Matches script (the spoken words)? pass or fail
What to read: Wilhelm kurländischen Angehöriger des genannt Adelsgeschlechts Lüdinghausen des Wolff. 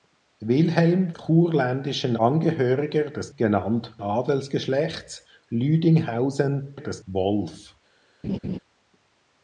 pass